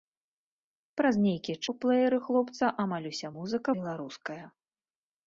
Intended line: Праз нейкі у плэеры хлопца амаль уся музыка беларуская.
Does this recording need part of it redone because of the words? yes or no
no